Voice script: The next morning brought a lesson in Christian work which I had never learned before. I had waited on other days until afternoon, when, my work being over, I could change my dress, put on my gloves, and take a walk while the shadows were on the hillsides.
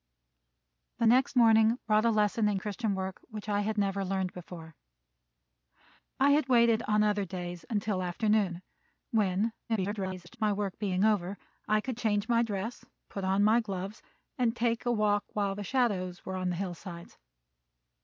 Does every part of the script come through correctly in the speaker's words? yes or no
no